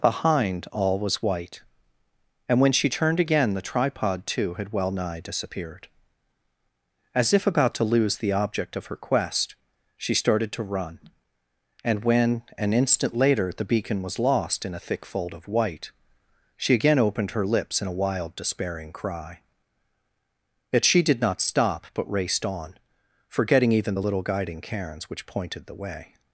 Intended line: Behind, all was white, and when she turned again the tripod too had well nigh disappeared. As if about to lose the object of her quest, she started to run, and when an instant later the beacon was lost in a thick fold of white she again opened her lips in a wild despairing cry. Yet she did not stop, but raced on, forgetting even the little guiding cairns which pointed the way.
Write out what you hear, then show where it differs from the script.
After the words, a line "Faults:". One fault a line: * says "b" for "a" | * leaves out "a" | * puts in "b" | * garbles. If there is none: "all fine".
Behind, all was white, and when she turned again the tripod too had well nigh disappeared. As if about to lose the object of her quest, she started to run, and when an instant later the beacon was lost in a thick fold of white she again opened her lips in a wild despairing cry. Yet she did not stop, but raced on, forgetting even the little guiding cairns which pointed the way.
Faults:
all fine